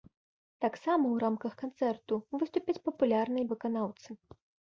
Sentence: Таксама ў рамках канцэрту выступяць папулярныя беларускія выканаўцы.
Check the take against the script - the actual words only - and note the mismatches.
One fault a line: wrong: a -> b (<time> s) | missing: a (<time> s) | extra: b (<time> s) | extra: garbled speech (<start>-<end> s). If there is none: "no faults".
missing: беларускія (3.5 s)